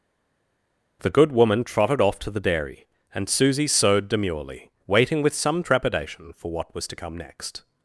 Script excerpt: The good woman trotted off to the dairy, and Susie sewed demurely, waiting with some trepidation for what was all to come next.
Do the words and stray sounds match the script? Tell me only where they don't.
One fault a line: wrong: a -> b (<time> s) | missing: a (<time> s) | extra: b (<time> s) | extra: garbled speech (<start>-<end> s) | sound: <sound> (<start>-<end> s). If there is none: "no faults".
missing: all (6.9 s)